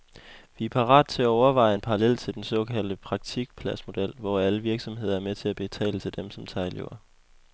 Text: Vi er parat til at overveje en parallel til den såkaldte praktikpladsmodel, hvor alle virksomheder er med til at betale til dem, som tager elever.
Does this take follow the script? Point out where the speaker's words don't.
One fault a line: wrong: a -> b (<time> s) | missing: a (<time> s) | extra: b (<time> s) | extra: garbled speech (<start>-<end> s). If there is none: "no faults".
no faults